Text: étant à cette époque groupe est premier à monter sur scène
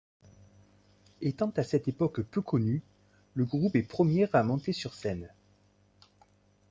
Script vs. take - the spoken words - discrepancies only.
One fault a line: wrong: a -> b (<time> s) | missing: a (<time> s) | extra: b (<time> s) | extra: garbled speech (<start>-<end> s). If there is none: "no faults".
extra: peu connu le (2.2 s)